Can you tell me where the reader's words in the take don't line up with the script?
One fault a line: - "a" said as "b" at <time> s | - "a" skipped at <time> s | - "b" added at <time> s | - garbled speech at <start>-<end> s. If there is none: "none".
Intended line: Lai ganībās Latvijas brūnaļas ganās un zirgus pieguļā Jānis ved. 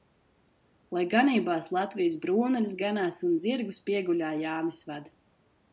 none